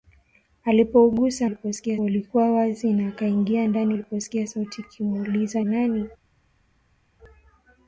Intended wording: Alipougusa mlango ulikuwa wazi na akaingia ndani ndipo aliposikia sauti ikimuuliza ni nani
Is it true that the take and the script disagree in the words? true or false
true